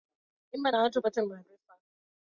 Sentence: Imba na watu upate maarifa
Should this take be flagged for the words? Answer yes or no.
no